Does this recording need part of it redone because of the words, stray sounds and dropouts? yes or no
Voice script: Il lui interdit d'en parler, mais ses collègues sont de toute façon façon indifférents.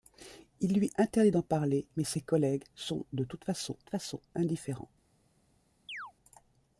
yes